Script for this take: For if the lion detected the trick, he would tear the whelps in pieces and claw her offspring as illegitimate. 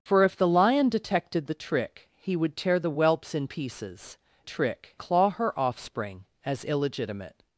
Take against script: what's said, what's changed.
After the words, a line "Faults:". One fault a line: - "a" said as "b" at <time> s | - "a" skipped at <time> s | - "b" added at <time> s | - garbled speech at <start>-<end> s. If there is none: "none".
For if the lion detected the trick, he would tear the whelps in pieces trick claw her offspring as illegitimate.
Faults:
- "and" said as "trick" at 4.4 s